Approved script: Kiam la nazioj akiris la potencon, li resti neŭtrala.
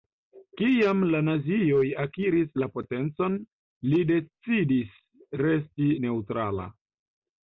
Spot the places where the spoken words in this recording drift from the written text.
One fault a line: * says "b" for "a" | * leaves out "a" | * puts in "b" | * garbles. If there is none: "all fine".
* puts in "decidis"